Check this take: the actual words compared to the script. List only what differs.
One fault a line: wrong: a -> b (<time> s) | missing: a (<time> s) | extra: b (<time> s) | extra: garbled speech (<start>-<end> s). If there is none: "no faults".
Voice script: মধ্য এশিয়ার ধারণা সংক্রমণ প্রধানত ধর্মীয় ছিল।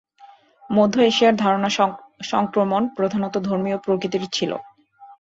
extra: প্রকৃতির (3.8 s)